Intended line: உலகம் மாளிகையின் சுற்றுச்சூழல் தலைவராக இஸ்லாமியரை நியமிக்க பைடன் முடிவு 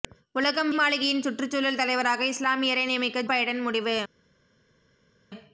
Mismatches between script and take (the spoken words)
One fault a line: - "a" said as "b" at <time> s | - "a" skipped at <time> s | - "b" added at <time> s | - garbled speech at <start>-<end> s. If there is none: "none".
none